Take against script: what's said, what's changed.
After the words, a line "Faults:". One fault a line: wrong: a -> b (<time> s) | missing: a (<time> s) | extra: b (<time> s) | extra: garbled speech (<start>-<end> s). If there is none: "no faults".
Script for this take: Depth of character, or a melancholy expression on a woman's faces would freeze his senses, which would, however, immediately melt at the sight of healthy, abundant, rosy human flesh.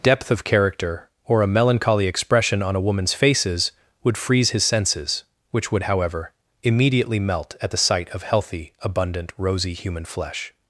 Depth of character, or a melancholy expression on a woman's faces would freeze his senses, which would, however, immediately melt at the sight of healthy, abundant, rosy human flesh.
Faults:
no faults